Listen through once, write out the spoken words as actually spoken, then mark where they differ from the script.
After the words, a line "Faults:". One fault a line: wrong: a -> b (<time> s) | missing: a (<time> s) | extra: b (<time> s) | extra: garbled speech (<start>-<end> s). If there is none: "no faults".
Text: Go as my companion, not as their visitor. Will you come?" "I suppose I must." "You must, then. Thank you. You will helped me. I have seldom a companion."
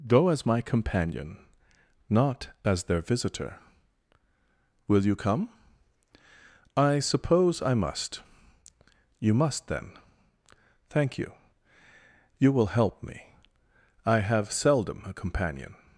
Go as my companion, not as their visitor. Will you come?" "I suppose I must." "You must, then. Thank you. You will help me. I have seldom a companion."
Faults:
wrong: helped -> help (12.8 s)